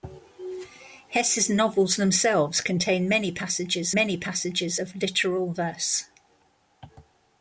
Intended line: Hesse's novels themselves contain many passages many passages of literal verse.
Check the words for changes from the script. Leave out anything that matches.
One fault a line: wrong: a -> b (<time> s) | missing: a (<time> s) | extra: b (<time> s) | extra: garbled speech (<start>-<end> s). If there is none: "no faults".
no faults